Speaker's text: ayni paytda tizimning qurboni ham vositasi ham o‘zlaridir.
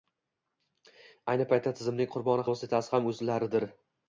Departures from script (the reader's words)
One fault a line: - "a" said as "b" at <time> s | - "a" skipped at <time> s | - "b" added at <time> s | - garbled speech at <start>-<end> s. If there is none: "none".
- "ham" skipped at 2.5 s